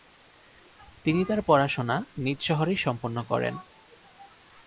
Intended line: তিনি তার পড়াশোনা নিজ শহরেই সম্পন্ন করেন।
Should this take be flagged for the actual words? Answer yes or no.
no